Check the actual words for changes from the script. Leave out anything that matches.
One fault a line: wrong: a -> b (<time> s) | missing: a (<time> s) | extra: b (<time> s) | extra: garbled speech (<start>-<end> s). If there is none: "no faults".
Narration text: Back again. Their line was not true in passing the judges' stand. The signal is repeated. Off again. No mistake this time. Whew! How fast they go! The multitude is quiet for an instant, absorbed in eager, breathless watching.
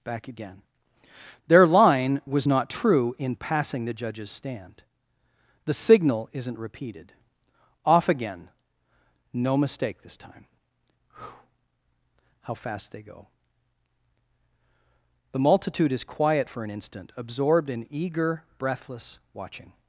wrong: is -> isn't (6.3 s)